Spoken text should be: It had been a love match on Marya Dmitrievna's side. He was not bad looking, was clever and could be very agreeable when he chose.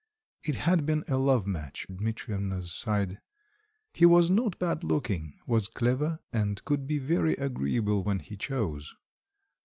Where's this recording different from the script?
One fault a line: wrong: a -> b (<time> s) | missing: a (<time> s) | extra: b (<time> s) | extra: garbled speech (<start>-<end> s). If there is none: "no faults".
missing: on Marya (1.9 s)